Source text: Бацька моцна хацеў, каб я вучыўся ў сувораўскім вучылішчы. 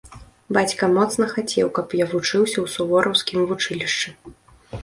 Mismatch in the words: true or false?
false